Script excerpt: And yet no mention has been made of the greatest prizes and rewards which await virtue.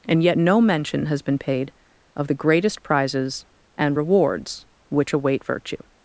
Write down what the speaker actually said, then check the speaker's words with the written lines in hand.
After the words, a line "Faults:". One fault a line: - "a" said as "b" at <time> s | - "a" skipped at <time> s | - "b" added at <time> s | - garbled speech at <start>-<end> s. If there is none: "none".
And yet no mention has been paid of the greatest prizes and rewards which await virtue.
Faults:
- "made" said as "paid" at 1.4 s